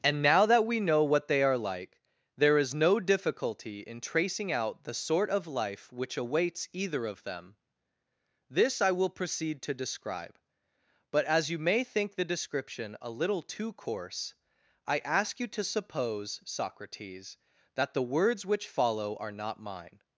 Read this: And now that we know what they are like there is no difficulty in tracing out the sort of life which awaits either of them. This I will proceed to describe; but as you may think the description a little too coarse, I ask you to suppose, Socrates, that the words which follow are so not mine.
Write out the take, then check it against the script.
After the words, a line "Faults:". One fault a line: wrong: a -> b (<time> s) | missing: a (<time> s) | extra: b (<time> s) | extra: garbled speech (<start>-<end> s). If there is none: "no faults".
And now that we know what they are like there is no difficulty in tracing out the sort of life which awaits either of them. This I will proceed to describe; but as you may think the description a little too coarse, I ask you to suppose, Socrates, that the words which follow are not mine.
Faults:
missing: so (19.3 s)